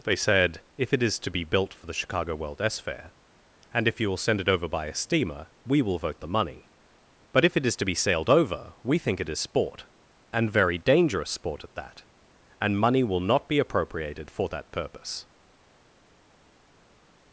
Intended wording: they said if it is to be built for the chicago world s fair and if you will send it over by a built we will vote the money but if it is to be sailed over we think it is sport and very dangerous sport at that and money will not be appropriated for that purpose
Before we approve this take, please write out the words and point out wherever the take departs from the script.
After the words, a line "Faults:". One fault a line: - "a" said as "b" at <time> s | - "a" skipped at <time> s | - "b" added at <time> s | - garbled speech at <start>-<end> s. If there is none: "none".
they said if it is to be built for the chicago world s fair and if you will send it over by a steamer we will vote the money but if it is to be sailed over we think it is sport and very dangerous sport at that and money will not be appropriated for that purpose
Faults:
- "built" said as "steamer" at 4.9 s